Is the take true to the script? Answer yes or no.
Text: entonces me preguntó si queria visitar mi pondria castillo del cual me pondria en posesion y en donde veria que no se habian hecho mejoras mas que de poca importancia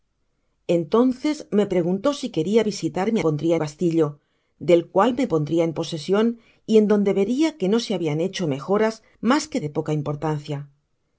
yes